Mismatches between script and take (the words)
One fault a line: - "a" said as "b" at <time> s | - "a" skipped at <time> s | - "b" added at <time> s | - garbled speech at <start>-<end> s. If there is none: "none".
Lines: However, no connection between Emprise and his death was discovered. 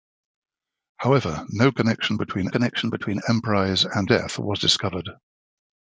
- "connection between" added at 2.5 s
- "his" skipped at 4.1 s